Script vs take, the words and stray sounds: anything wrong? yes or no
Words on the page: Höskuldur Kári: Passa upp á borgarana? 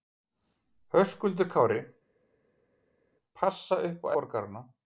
no